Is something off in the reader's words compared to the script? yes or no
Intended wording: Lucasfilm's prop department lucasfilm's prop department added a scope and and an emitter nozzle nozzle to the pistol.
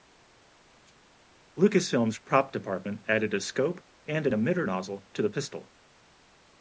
yes